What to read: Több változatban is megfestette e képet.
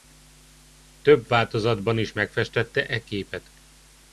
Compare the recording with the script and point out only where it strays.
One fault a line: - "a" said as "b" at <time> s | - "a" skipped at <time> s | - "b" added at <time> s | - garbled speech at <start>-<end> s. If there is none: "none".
none